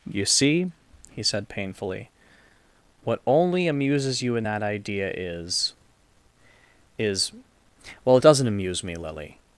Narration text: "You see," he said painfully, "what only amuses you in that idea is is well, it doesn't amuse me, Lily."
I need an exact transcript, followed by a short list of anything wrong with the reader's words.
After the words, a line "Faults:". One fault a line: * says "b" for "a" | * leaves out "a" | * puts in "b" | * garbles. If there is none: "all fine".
"You see," he said painfully, "what only amuses you in that idea is is well, it doesn't amuse me, Lily."
Faults:
all fine